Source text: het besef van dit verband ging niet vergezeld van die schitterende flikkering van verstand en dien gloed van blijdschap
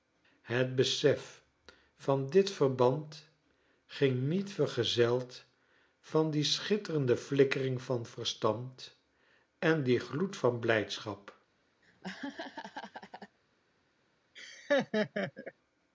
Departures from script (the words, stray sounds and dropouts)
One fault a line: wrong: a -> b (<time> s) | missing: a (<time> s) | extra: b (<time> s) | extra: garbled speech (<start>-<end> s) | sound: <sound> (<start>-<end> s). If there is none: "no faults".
sound: laugh (11.8-13.4 s)
sound: laugh (14.4-15.5 s)